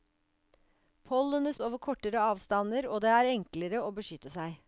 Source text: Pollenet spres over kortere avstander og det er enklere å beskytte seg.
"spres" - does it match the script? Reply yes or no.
no